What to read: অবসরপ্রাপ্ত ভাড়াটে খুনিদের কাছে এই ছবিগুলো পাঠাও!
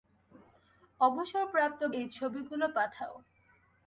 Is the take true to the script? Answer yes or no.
no